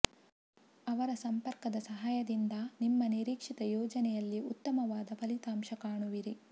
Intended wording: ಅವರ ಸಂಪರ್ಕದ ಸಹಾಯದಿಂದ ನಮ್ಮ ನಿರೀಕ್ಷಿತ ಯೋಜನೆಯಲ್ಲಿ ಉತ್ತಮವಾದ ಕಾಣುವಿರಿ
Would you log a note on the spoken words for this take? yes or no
yes